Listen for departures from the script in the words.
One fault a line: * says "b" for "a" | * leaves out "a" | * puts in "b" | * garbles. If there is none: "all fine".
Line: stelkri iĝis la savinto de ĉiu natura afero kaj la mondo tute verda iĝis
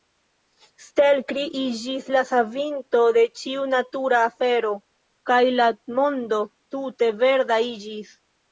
all fine